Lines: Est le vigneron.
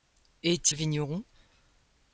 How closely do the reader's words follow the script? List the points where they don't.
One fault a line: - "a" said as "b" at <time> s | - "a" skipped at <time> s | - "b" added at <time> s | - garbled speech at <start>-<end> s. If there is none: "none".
none